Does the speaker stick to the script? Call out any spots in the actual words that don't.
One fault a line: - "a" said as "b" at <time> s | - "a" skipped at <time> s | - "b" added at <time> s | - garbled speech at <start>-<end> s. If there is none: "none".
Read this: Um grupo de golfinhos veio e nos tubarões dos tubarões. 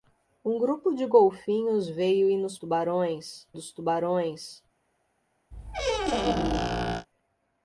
none